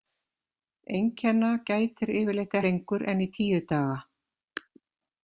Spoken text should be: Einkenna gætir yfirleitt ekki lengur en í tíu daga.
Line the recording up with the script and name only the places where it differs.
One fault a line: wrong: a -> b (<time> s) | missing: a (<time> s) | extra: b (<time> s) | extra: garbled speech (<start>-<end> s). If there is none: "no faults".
missing: ekki (2.6 s)